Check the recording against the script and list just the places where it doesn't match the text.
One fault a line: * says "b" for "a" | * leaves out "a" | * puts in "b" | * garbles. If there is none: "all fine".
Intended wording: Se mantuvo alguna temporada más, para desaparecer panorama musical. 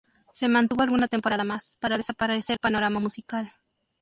all fine